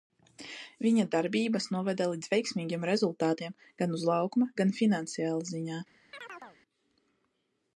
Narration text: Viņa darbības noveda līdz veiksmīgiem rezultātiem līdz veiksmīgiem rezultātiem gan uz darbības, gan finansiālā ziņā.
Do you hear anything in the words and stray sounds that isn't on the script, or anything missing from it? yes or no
yes